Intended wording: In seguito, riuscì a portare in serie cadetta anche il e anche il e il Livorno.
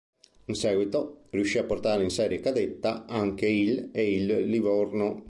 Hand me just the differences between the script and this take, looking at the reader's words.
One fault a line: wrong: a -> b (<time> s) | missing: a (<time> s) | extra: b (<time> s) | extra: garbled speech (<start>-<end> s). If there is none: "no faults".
missing: anche il e (4.1 s)